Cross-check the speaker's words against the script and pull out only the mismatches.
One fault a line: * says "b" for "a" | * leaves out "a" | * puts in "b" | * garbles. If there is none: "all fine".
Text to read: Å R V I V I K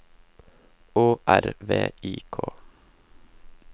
* leaves out "V I"